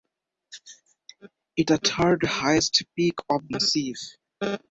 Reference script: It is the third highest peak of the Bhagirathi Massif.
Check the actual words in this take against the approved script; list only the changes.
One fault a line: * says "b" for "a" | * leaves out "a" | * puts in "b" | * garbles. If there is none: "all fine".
* leaves out "is"
* leaves out "the Bhagirathi"